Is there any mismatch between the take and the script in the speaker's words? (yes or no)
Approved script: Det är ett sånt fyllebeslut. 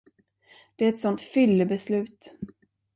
no